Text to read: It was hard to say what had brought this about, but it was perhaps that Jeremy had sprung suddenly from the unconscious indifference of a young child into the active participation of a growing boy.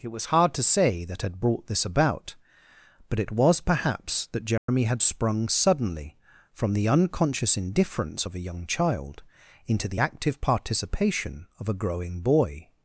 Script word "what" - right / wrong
wrong